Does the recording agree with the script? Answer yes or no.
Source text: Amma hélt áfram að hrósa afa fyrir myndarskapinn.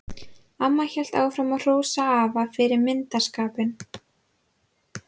yes